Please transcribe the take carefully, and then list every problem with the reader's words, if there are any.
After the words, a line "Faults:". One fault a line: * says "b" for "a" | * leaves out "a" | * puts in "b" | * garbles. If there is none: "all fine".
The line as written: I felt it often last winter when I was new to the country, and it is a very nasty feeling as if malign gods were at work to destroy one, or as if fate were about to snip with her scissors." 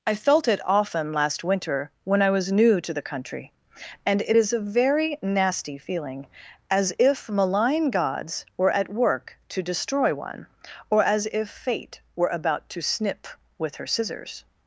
I felt it often last winter when I was new to the country, and it is a very nasty feeling as if malign gods were at work to destroy one, or as if fate were about to snip with her scissors."
Faults:
all fine